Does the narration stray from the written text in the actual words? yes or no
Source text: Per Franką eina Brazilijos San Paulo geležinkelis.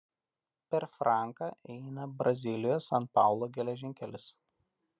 no